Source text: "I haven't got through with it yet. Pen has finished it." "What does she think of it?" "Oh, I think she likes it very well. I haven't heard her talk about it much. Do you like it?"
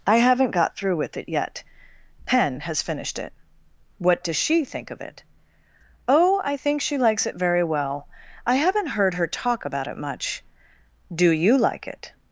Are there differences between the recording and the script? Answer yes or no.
no